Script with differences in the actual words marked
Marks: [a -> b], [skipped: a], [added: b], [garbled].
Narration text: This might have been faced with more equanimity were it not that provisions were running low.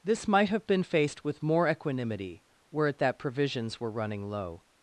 This might have been faced with more equanimity were it [skipped: not] that provisions were running low.